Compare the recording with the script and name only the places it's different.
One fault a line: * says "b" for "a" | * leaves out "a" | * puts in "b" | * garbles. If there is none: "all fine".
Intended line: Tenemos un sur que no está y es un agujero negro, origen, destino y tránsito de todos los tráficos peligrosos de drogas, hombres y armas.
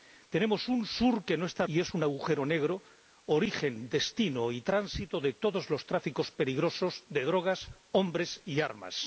all fine